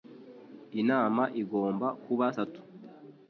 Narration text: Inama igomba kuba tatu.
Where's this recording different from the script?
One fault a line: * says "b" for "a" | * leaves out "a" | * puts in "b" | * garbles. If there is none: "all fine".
all fine